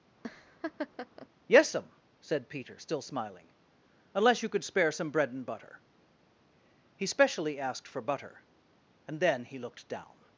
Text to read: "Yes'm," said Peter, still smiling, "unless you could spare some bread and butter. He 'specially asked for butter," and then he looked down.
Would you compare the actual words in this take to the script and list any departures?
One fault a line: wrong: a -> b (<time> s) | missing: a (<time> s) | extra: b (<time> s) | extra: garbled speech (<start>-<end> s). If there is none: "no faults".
no faults